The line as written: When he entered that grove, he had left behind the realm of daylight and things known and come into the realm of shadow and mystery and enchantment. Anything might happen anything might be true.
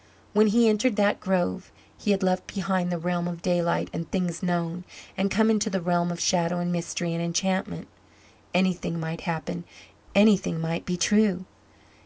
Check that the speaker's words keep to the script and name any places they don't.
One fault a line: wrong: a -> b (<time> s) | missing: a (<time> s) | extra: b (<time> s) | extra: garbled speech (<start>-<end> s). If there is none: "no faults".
no faults